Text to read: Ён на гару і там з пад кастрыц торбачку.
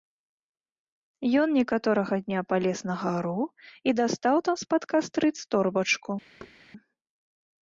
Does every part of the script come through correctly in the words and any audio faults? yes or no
no